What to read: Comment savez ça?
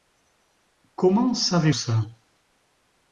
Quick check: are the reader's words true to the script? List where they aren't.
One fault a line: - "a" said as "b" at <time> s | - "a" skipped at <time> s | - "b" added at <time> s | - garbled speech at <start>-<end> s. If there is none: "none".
none